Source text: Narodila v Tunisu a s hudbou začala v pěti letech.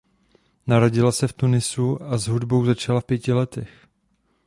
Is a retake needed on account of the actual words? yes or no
yes